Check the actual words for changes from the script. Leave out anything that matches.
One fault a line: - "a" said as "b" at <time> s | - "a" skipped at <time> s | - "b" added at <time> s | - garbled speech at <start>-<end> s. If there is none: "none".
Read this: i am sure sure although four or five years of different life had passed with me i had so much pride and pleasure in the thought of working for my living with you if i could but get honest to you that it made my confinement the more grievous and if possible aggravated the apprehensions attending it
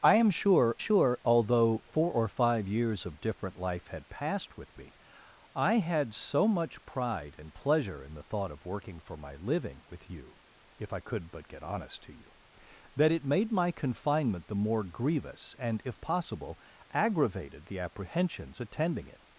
none